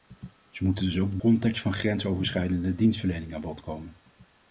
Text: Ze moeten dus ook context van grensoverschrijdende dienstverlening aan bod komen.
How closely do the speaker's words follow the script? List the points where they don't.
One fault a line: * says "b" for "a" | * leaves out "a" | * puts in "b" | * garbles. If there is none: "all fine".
all fine